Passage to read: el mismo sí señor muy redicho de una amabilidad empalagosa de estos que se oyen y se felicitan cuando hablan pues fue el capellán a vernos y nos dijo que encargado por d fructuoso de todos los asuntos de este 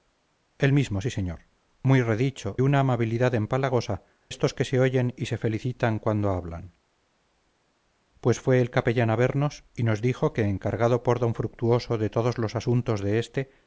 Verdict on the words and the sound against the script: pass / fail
fail